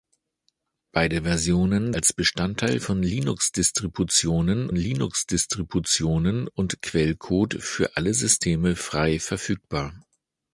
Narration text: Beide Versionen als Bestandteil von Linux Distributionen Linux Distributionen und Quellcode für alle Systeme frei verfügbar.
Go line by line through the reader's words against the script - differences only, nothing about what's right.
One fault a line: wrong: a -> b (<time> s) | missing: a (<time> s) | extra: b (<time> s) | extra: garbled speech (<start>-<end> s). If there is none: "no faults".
no faults